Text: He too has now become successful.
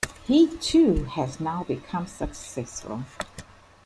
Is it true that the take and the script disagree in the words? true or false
false